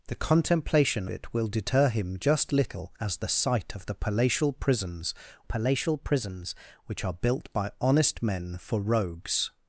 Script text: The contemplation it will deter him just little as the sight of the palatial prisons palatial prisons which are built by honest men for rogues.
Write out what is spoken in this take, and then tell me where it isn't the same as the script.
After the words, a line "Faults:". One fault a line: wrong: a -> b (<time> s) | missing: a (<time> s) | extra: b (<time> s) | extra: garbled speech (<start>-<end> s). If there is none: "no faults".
The contemplation it will deter him just little as the sight of the palatial prisons palatial prisons which are built by honest men for rogues.
Faults:
no faults